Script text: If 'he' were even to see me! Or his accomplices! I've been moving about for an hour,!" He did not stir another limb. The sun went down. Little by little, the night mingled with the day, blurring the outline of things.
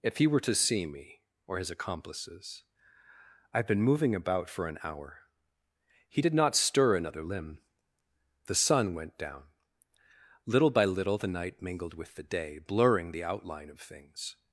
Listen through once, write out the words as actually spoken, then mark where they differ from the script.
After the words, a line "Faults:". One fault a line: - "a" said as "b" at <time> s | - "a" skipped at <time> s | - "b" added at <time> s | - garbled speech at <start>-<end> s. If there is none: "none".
If 'he' were to see me! Or his accomplices! I've been moving about for an hour,!" He did not stir another limb. The sun went down. Little by little, the night mingled with the day, blurring the outline of things.
Faults:
- "even" skipped at 0.4 s